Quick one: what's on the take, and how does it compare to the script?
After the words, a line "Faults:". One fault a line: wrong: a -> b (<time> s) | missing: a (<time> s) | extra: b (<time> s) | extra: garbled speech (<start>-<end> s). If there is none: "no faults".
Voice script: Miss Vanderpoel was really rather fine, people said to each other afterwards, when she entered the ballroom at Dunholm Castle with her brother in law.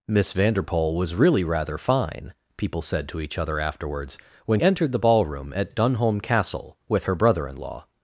Miss Vanderpoel was really rather fine, people said to each other afterwards, when entered the ballroom at Dunholm Castle with her brother in law.
Faults:
missing: she (4.6 s)